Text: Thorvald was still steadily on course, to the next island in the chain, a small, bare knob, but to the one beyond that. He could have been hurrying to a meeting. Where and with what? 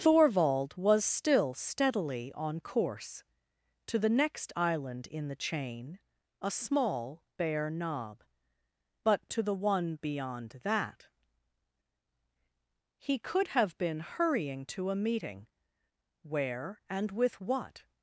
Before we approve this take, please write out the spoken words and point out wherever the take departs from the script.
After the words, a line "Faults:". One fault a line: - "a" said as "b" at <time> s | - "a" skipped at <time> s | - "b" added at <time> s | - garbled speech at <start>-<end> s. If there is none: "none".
Thorvald was still steadily on course, to the next island in the chain, a small, bare knob, but to the one beyond that. He could have been hurrying to a meeting. Where and with what?
Faults:
none